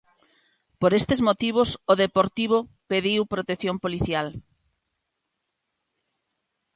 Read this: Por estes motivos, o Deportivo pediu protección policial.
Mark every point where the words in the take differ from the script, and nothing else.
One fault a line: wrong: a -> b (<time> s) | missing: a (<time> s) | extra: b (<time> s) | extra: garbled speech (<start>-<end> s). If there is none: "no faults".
no faults